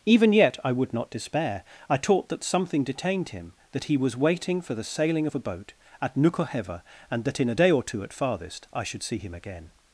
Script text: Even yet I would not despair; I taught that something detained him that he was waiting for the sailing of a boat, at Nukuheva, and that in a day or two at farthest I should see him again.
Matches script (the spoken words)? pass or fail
pass